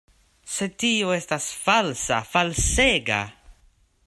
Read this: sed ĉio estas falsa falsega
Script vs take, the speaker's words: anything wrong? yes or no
yes